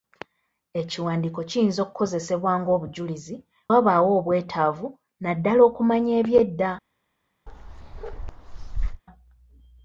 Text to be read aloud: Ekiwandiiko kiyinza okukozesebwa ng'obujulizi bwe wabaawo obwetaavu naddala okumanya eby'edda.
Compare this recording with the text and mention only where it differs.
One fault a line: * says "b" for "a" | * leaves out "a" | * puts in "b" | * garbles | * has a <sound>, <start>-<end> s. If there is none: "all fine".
* leaves out "bwe"
* has a bark, 7.5-9.0 s